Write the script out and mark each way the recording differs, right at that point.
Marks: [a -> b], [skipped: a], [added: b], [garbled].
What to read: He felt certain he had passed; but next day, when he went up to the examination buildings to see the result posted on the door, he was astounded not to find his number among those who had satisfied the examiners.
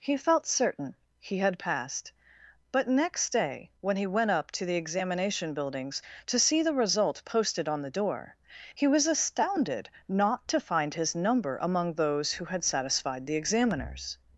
He felt certain he had passed; but next day, when he went up to the examination buildings to see the result posted on the door, he was astounded not to find his number among those who had satisfied the examiners.